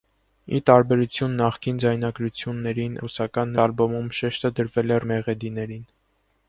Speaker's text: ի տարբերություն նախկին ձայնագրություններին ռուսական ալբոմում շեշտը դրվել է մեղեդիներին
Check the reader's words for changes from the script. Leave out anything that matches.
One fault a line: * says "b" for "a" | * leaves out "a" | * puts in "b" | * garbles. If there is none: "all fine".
all fine